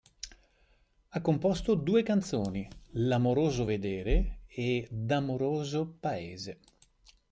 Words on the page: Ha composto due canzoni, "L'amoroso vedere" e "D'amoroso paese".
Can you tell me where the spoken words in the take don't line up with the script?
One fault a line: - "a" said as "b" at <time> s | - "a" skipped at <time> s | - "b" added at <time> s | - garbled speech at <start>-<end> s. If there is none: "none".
none